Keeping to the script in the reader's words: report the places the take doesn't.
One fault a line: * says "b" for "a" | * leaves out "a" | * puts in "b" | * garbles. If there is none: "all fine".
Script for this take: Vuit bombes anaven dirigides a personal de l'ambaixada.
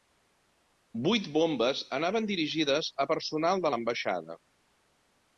all fine